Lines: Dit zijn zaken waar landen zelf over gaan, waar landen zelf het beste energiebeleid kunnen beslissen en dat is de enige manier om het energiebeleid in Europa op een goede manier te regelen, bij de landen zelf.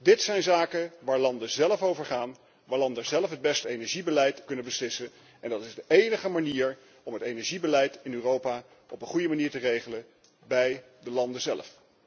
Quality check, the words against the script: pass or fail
pass